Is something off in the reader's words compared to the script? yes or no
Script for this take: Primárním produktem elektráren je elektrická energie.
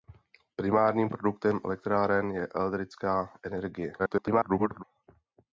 yes